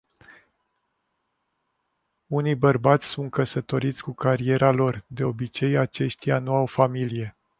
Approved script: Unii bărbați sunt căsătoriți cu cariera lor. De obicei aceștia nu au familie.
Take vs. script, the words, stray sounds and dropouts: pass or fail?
pass